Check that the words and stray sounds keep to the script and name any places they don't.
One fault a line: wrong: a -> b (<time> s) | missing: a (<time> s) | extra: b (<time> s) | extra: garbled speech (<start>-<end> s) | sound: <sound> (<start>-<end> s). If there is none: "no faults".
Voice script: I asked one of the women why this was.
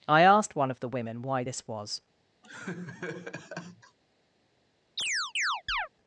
sound: laugh (2.4-4.0 s)
sound: chirp (5.0-5.9 s)